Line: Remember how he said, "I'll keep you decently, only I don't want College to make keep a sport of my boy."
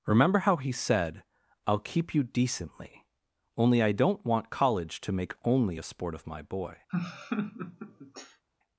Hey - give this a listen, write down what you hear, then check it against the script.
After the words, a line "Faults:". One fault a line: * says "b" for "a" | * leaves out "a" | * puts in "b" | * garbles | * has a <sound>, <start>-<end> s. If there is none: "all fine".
Remember how he said, "I'll keep you decently, only I don't want College to make only a sport of my boy."
Faults:
* says "only" for "keep"
* has a laugh, 6.9-8.4 s